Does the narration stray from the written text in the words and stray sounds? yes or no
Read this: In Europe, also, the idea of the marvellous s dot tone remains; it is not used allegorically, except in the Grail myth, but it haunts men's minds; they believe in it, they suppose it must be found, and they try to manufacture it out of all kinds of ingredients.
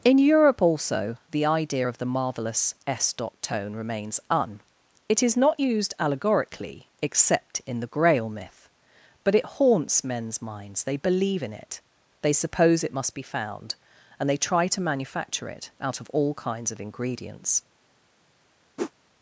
yes